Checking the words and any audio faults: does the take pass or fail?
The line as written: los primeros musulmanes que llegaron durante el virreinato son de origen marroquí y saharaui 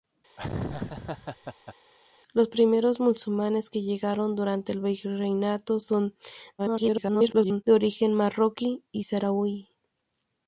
fail